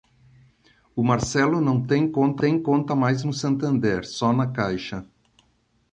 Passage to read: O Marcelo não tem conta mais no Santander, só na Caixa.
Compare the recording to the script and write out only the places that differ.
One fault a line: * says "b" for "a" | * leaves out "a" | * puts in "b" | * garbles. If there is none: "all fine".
* puts in "tem conta"